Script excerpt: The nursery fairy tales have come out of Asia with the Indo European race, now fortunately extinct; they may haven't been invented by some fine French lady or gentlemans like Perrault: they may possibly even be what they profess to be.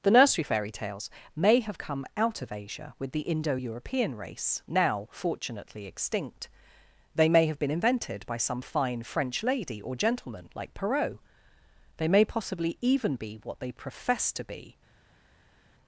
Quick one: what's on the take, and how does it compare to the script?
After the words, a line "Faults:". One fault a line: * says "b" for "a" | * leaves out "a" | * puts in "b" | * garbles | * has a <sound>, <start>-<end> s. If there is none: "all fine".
The nursery fairy tales may have come out of Asia with the Indo European race, now fortunately extinct; they may have been invented by some fine French lady or gentleman like Perrault: they may possibly even be what they profess to be.
Faults:
* puts in "may"
* says "have" for "haven't"
* says "gentleman" for "gentlemans"